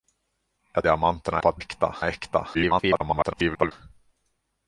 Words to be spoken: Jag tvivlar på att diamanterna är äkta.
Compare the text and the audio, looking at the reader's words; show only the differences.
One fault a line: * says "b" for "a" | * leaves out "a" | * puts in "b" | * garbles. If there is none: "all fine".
* says "diamanterna" for "tvivlar"
* says "äkta" for "diamanterna"
* garbles